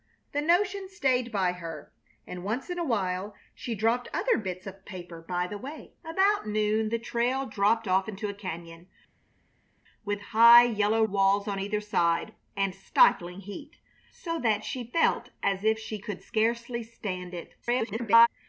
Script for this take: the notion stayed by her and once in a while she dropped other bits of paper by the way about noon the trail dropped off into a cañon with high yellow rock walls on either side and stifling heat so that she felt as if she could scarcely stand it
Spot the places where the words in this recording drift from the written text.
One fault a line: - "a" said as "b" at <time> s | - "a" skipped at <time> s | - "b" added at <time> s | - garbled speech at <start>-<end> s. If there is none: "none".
- "rock" skipped at 11.0 s
- garbled speech at 17.6-18.3 s